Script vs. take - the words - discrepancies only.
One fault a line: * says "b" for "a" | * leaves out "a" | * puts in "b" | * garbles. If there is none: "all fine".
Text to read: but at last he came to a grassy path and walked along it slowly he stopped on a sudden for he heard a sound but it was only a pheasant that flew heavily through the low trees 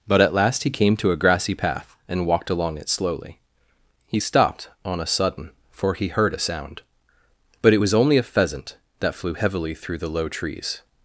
all fine